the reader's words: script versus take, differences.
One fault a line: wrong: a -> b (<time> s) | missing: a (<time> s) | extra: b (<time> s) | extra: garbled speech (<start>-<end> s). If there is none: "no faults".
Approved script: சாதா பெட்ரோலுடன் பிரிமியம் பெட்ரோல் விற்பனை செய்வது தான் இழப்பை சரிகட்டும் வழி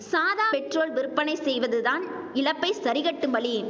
missing: பெட்ரோலுடன் பிரிமியம் (0.5 s)